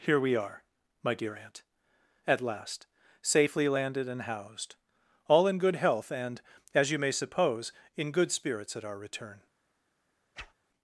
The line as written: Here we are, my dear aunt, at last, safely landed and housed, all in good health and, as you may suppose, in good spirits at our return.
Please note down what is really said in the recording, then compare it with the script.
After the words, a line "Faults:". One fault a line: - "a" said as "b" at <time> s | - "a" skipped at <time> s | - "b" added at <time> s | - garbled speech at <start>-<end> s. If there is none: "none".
Here we are, my dear aunt, at last, safely landed and housed, all in good health and, as you may suppose, in good spirits at our return.
Faults:
none